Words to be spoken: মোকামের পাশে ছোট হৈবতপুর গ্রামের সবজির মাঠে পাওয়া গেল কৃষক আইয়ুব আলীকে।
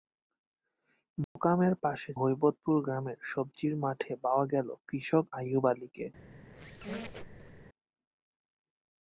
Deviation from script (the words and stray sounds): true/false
true